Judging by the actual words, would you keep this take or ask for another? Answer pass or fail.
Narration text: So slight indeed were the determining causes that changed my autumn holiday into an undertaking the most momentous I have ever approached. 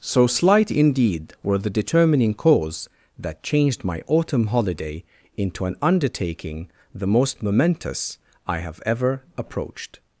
fail